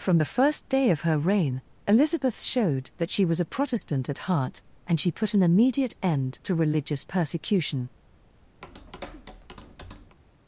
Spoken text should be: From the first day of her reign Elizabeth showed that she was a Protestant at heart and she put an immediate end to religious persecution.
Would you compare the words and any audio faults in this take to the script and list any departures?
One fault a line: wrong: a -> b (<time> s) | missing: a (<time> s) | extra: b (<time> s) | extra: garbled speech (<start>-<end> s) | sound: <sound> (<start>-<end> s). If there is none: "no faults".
sound: tap (8.6-10.2 s)